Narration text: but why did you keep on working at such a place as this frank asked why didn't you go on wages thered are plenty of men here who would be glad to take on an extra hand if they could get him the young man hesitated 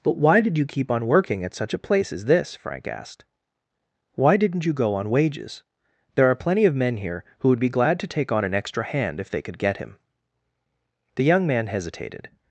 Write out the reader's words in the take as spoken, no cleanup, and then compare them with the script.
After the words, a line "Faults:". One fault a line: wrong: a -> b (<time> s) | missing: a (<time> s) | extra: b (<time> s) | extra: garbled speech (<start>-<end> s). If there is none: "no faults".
but why did you keep on working at such a place as this frank asked why didn't you go on wages there are plenty of men here who would be glad to take on an extra hand if they could get him the young man hesitated
Faults:
wrong: thered -> there (6.2 s)